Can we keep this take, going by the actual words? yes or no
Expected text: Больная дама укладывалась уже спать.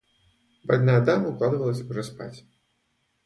yes